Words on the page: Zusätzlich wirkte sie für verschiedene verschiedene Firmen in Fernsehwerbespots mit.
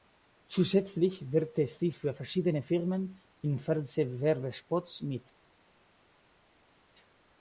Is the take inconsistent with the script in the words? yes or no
yes